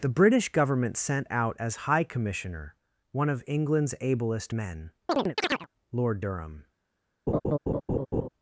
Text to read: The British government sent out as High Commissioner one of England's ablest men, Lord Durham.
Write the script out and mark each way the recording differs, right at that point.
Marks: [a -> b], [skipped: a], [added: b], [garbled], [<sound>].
The British government sent out as High Commissioner one of England's ablest men, [chirp] Lord Durham. [laugh]